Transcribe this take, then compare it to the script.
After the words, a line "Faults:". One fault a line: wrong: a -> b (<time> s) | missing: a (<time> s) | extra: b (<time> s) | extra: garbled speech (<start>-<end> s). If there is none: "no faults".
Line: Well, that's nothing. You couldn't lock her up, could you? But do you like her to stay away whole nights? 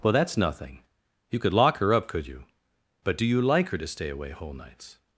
Well, that's nothing. You could lock her up, could you? But do you like her to stay away whole nights?
Faults:
wrong: couldn't -> could (1.4 s)